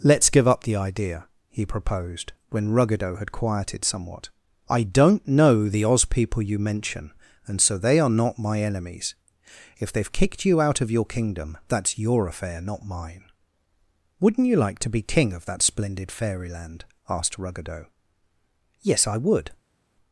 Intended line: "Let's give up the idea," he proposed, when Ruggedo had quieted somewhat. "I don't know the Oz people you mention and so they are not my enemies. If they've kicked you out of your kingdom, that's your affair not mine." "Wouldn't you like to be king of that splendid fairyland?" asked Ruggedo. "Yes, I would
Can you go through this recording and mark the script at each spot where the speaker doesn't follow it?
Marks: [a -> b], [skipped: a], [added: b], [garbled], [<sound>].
"Let's give up the idea," he proposed, when Ruggedo had quieted somewhat. "I don't know the Oz people you mention and so they are not my enemies. If they've kicked you out of your kingdom, that's your affair not mine." "Wouldn't you like to be king of that splendid fairyland?" asked Ruggedo. "Yes, I would